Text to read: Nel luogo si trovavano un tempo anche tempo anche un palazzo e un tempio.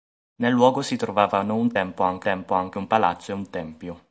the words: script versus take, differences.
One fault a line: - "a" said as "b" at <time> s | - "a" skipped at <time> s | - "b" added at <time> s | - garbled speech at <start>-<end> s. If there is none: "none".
none